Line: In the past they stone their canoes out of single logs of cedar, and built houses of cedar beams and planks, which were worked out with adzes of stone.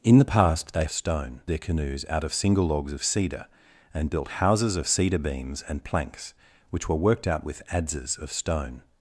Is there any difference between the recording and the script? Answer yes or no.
no